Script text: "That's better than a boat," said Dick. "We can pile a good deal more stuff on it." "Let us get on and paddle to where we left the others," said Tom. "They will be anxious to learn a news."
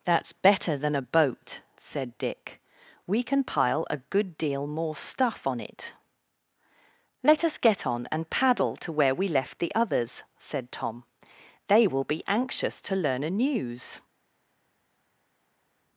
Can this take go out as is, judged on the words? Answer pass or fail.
pass